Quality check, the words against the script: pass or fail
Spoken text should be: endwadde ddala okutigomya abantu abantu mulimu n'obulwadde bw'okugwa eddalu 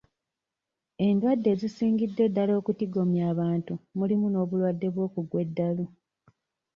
fail